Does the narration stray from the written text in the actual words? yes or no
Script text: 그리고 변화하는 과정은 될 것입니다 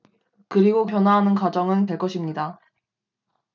no